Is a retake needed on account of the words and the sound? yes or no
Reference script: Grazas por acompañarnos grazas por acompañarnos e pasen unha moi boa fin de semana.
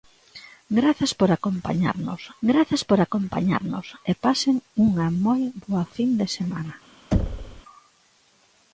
yes